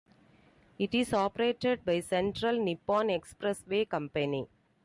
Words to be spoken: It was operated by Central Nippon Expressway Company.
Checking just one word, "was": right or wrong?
wrong